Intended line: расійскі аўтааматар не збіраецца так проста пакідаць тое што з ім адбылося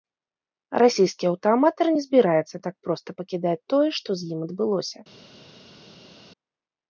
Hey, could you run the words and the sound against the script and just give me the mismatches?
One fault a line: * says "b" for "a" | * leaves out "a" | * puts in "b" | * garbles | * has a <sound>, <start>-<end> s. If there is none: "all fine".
all fine